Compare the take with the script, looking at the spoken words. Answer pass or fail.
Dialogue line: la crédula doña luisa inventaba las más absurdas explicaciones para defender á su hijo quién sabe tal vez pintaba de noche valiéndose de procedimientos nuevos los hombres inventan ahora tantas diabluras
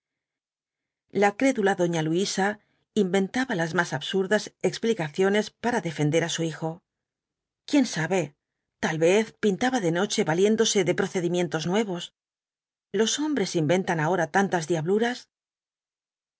pass